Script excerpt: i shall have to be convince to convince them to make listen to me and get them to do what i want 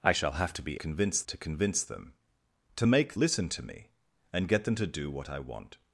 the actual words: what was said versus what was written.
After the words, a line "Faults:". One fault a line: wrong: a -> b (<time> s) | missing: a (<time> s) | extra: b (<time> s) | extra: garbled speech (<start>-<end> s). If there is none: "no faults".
i shall have to be convince to convince them to make listen to me and get them to do what i want
Faults:
no faults